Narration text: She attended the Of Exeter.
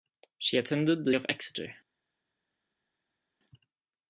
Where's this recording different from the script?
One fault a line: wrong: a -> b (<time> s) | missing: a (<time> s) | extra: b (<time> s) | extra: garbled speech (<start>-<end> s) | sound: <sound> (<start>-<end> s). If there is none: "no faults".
no faults